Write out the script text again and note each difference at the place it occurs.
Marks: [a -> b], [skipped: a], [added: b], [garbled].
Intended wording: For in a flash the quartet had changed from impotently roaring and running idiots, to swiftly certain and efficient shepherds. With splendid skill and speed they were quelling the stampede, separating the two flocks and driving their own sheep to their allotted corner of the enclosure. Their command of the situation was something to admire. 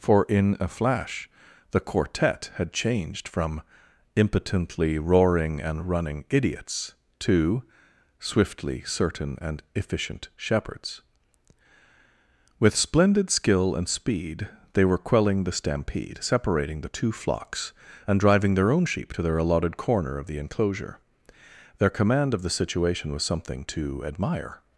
For in a flash the quartet had changed from impotently roaring and running idiots, to swiftly certain and efficient shepherds. With splendid skill and speed they were quelling the stampede, separating the two flocks and driving their own sheep to their allotted corner of the enclosure. Their command of the situation was something to admire.